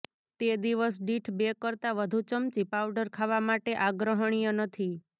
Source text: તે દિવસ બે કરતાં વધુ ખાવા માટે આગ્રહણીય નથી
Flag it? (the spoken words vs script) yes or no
yes